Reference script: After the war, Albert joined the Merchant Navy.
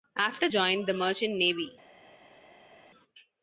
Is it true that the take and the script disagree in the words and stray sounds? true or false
true